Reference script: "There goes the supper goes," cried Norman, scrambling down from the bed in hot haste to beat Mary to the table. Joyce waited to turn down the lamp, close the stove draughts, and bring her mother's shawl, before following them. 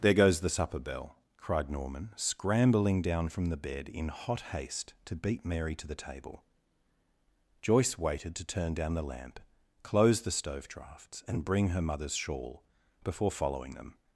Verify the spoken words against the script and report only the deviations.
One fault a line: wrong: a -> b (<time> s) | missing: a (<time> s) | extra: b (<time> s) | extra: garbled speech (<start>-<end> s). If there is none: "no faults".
wrong: goes -> bell (0.8 s)